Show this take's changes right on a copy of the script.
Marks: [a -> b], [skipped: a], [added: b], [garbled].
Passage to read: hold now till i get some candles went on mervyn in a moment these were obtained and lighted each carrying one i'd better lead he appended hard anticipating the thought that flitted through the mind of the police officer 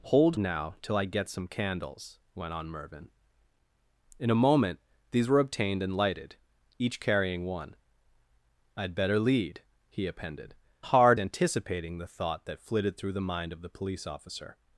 hold now till i get some candles went on mervyn in a moment these were obtained and lighted each carrying one i'd better lead he appended hard anticipating the thought that flitted through the mind of the police officer